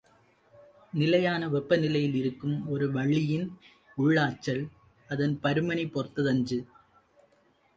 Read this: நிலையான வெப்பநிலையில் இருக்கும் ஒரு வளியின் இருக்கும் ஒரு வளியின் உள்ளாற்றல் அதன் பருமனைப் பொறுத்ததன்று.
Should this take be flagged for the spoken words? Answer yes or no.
yes